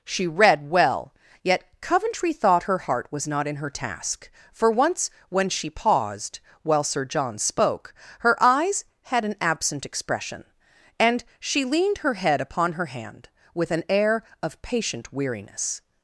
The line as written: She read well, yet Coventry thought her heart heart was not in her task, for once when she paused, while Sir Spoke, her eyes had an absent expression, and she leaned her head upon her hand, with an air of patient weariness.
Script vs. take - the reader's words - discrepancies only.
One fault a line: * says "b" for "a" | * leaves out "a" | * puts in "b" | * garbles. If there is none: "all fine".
* leaves out "heart"
* puts in "John"